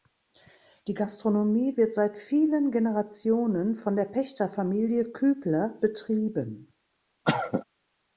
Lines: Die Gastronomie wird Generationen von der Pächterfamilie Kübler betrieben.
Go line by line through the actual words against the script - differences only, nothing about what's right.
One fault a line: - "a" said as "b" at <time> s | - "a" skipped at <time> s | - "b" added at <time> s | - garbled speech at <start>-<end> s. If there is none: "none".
- "seit vielen" added at 1.9 s